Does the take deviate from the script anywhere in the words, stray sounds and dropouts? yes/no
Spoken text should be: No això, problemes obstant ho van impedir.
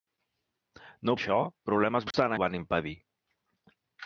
yes